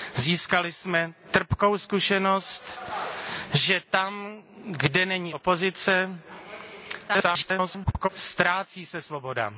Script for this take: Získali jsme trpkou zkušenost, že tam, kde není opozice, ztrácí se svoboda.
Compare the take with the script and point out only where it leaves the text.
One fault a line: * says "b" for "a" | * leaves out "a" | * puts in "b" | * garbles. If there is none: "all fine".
* garbles